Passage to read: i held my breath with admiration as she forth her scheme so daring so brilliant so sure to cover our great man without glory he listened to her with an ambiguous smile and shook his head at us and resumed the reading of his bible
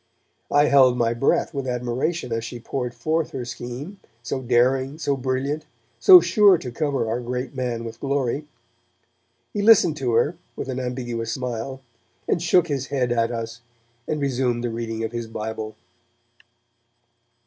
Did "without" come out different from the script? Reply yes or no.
yes